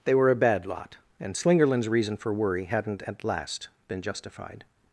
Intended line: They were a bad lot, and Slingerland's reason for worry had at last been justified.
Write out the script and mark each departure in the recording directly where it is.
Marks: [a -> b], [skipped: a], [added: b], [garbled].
They were a bad lot, and Slingerland's reason for worry [had -> hadn't] at last been justified.